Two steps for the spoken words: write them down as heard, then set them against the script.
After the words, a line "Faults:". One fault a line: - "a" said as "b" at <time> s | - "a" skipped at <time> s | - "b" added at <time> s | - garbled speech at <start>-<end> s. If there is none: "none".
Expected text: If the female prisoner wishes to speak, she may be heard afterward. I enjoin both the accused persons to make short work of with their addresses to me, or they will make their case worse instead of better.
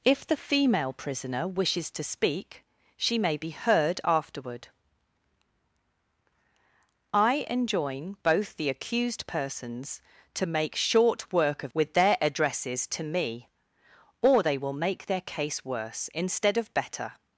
If the female prisoner wishes to speak, she may be heard afterward. I enjoin both the accused persons to make short work of with their addresses to me, or they will make their case worse instead of better.
Faults:
none